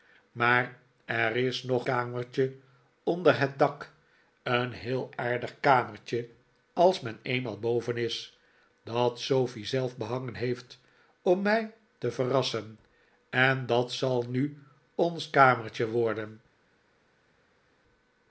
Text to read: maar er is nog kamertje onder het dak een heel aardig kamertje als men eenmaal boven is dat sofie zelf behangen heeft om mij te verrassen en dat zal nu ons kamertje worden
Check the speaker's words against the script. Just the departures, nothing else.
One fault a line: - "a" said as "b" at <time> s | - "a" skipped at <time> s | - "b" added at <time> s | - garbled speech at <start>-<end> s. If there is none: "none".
none